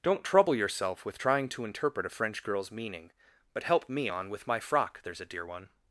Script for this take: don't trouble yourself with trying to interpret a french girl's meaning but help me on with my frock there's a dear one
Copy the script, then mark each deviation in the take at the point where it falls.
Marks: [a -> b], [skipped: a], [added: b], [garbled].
don't trouble yourself with trying to interpret a french girl's meaning but help me on with my frock there's a dear one